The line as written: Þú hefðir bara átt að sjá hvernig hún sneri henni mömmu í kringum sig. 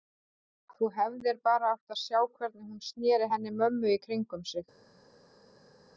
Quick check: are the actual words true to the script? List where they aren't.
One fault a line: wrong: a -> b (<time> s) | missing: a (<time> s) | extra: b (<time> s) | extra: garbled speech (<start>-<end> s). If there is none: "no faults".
no faults